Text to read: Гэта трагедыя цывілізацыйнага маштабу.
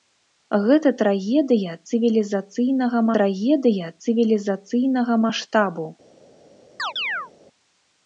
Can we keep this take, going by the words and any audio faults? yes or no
no